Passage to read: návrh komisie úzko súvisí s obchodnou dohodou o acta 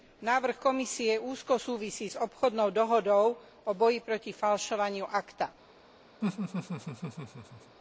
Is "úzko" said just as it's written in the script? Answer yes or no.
yes